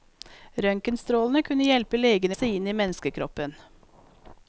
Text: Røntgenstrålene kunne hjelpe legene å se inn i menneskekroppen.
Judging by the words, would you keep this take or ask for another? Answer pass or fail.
pass